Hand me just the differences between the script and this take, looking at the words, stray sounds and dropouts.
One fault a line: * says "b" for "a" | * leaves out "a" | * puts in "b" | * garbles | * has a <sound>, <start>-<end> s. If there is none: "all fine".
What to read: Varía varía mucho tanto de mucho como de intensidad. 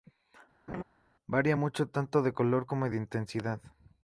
* has a laugh, 0.7-0.8 s
* leaves out "varía"
* says "color" for "mucho"